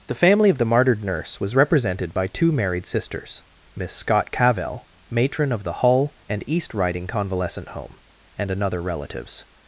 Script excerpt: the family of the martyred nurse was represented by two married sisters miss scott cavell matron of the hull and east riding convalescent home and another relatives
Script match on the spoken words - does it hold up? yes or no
yes